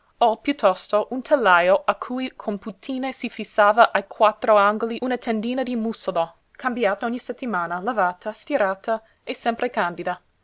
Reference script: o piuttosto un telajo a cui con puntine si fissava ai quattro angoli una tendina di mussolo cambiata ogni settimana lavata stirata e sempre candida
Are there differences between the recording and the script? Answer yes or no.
no